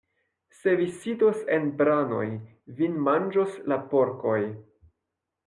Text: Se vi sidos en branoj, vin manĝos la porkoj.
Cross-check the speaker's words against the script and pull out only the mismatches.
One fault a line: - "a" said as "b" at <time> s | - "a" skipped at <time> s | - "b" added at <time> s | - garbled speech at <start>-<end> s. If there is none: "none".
none